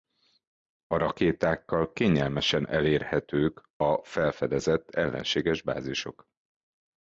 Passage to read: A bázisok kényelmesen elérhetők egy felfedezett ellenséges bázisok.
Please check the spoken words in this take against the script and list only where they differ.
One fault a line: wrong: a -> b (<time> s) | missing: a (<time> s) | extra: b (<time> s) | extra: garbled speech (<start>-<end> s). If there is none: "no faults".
wrong: bázisok -> rakétákkal (1.0 s)
wrong: egy -> a (3.8 s)